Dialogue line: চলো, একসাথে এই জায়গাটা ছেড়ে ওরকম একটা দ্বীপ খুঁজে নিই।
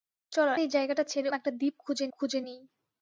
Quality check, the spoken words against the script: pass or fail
fail